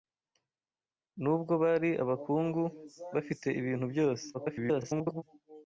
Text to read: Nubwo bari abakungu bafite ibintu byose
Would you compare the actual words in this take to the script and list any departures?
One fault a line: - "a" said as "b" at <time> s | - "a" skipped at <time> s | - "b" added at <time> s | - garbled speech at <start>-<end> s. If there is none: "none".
- garbled speech at 4.3-5.2 s